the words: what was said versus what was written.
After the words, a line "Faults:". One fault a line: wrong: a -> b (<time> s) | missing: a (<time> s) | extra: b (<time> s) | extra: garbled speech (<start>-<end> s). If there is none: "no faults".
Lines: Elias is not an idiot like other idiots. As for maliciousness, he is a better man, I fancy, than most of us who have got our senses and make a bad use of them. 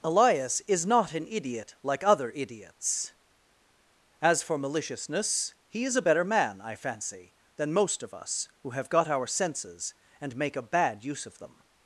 Elias is not an idiot like other idiots. As for maliciousness, he is a better man, I fancy, than most of us who have got our senses and make a bad use of them.
Faults:
no faults